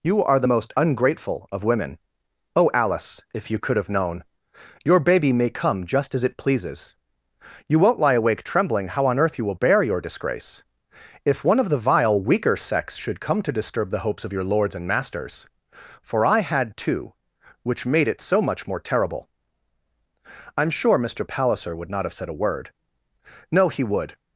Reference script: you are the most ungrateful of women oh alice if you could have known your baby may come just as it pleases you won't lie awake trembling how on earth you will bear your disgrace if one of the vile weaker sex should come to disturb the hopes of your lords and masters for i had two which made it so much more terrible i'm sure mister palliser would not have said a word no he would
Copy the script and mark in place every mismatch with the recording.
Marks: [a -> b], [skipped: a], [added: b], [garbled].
you are the most ungrateful of women oh alice if you could have known your baby may come just as it pleases you won't lie awake trembling how on earth you will bear your disgrace if one of the vile weaker sex should come to disturb the hopes of your lords and masters for i had two which made it so much more terrible i'm sure mister palliser would not have said a word no he would